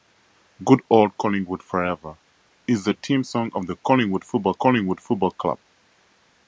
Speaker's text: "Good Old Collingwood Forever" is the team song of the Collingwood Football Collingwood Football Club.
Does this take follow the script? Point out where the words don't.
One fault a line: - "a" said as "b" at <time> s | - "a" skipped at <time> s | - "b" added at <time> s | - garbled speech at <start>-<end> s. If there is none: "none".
none